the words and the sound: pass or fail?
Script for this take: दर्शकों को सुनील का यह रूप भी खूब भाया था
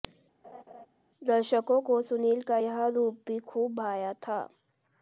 fail